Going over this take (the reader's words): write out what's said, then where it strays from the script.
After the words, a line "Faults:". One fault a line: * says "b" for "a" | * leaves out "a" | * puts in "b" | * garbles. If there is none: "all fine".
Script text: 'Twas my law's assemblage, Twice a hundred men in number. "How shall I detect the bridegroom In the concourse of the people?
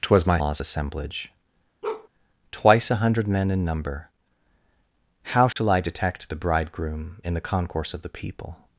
'Twas my law's assemblage, Twice a hundred men in number. "How shall I detect the bridegroom In the concourse of the people?
Faults:
all fine